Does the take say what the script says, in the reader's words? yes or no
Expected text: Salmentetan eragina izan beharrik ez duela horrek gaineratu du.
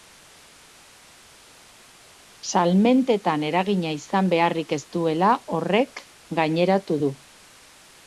yes